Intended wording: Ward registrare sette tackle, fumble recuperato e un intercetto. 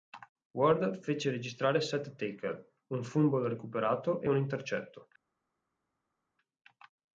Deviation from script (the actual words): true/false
true